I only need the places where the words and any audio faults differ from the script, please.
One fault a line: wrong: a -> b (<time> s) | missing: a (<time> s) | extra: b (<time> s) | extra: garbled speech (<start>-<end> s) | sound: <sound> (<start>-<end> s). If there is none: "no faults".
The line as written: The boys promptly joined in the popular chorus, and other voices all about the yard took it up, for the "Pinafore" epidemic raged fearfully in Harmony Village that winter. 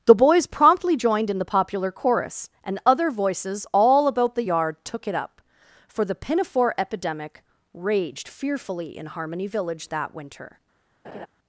sound: laugh (11.0-11.3 s)